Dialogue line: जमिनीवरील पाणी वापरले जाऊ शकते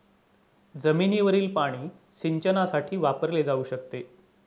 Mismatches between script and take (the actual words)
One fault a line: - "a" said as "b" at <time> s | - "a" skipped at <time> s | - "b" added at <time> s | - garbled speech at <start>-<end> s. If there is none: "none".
- "सिंचनासाठी" added at 2.1 s